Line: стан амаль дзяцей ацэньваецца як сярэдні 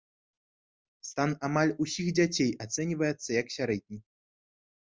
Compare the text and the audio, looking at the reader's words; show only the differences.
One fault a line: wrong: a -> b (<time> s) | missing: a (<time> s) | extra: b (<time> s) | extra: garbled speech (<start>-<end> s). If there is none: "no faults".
extra: усіх (1.9 s)